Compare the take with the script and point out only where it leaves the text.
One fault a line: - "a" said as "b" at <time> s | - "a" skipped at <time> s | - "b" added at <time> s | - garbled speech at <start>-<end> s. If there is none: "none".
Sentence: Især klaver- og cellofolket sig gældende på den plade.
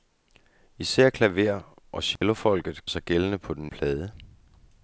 none